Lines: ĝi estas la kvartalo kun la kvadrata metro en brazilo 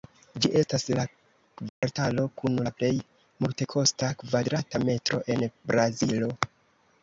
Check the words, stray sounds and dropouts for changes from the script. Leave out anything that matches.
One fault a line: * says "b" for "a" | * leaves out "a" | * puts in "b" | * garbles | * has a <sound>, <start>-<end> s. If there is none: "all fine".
* has a dropout, 1.7-1.8 s
* puts in "plej multekosta"